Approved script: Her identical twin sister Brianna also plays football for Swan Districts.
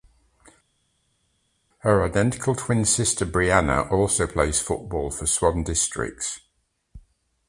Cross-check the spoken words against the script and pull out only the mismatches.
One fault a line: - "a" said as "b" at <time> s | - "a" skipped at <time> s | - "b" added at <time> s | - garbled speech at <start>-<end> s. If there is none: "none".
none